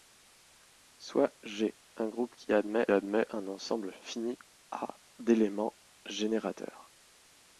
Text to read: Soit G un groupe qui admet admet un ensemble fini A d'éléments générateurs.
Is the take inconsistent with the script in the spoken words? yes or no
no